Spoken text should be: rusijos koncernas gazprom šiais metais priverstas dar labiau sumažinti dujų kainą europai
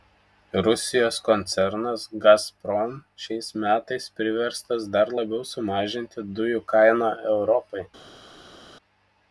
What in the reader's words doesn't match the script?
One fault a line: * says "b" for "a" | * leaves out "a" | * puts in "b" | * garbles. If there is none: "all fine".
all fine